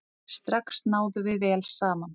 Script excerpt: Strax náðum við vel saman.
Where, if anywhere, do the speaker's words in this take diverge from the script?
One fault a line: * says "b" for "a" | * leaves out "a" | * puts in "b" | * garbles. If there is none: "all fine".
all fine